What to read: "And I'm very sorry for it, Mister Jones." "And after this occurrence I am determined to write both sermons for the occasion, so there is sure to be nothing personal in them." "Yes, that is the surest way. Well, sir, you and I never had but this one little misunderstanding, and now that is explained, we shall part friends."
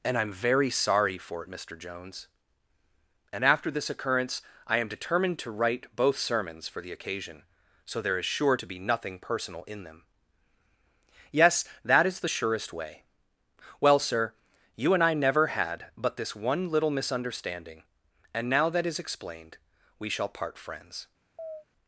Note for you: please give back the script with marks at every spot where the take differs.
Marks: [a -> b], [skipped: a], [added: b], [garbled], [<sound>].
"And I'm very sorry for it, Mister Jones." "And after this occurrence I am determined to write both sermons for the occasion, so there is sure to be nothing personal in them." "Yes, that is the surest way. Well, sir, you and I never had but this one little misunderstanding, and now that is explained, we shall part friends." [chirp]